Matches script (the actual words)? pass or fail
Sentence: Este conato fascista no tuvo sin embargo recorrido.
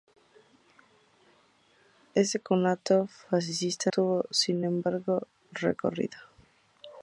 fail